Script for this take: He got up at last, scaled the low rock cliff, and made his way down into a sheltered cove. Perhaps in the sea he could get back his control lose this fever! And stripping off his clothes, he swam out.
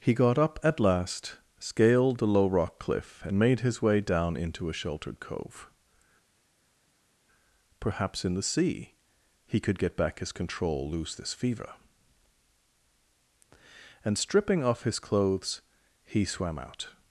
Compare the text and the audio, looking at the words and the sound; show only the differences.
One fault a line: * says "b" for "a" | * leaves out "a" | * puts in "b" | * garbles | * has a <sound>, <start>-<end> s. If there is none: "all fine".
all fine